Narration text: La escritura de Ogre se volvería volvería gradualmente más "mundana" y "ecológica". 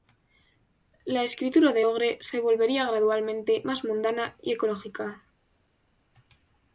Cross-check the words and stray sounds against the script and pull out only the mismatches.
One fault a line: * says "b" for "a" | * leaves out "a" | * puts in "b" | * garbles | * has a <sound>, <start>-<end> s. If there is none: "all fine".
* leaves out "volvería"